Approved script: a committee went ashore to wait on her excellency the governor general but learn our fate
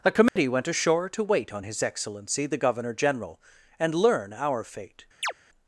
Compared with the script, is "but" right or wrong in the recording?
wrong